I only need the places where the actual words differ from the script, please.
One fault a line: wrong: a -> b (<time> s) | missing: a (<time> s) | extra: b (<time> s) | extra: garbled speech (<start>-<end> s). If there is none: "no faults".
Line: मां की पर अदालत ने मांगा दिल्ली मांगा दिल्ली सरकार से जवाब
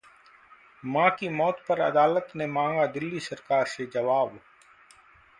extra: मौत (1.3 s)
missing: मांगा दिल्ली (3.2 s)